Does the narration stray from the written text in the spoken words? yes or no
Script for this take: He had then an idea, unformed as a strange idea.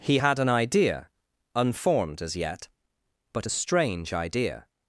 yes